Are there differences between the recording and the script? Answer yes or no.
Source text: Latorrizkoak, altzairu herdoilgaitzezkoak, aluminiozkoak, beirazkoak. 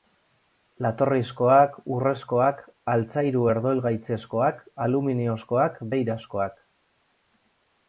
yes